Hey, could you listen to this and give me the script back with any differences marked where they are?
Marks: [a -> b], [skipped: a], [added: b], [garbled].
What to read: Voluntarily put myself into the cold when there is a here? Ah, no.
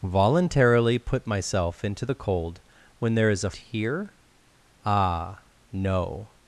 Voluntarily put myself into the cold when there is a here? Ah, no.